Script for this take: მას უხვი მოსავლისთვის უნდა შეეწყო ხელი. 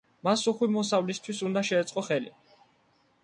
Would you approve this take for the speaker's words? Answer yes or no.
yes